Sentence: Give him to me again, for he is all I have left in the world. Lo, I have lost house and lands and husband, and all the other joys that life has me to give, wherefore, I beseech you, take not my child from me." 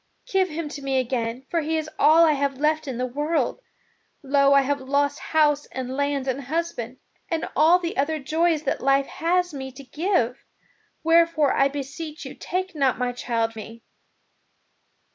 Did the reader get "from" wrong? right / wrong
wrong